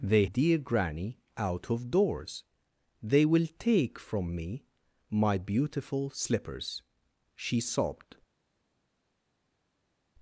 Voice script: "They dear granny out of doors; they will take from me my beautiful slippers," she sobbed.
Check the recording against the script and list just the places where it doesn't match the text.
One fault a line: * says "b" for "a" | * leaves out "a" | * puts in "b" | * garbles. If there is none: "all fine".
all fine